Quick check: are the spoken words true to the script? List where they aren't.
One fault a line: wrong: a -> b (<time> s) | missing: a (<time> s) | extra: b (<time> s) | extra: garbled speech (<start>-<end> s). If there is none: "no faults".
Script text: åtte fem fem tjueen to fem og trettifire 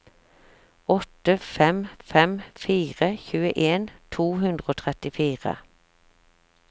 extra: fire (2.6 s)
wrong: fem -> hundre (4.4 s)